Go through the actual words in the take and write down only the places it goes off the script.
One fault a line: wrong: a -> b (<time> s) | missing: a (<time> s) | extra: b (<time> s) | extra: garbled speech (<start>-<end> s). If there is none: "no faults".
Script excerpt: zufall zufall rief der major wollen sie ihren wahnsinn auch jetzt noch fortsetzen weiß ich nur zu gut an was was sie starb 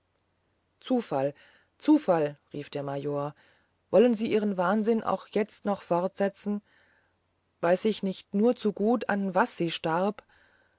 extra: nicht (8.0 s)
missing: was (9.6 s)